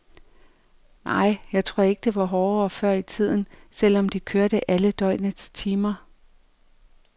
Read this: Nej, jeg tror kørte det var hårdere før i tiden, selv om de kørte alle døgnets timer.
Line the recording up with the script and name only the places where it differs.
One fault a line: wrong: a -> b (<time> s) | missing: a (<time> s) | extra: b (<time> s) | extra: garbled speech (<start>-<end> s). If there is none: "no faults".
wrong: kørte -> ikke (1.8 s)